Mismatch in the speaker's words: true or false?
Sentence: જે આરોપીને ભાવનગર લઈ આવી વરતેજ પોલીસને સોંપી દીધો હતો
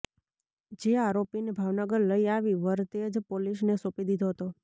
false